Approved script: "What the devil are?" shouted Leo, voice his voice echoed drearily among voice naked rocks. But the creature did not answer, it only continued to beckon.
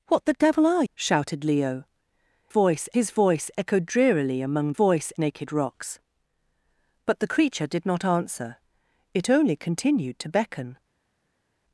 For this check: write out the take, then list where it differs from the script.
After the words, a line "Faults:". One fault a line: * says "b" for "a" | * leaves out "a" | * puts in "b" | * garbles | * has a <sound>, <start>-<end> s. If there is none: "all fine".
"What the devil are?" shouted Leo, voice his voice echoed drearily among voice naked rocks. But the creature did not answer, it only continued to beckon.
Faults:
all fine